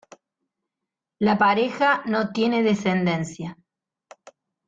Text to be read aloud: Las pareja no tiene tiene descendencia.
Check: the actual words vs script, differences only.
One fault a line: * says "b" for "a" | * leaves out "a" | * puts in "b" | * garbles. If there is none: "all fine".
* says "La" for "Las"
* leaves out "tiene"